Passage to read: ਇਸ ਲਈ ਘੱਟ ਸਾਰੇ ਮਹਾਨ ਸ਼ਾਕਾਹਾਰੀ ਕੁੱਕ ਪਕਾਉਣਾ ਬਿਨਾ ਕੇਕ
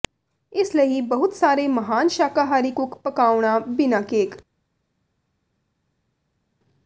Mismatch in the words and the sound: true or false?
true